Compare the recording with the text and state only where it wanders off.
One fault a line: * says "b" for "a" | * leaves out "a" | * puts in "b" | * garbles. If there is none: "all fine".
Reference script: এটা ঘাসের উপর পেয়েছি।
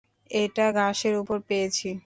all fine